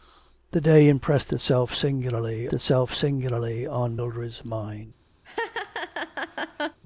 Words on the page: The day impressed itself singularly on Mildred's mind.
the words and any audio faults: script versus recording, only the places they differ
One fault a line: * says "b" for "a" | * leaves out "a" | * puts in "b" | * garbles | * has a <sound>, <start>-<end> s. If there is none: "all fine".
* puts in "itself singularly"
* has a laugh, 5.2-6.8 s